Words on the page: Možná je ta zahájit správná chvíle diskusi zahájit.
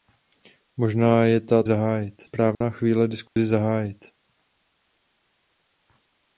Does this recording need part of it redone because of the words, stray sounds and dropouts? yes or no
yes